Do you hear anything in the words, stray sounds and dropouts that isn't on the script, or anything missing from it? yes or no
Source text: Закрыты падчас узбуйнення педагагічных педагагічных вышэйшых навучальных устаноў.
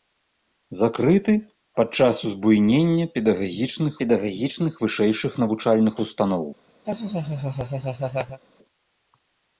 yes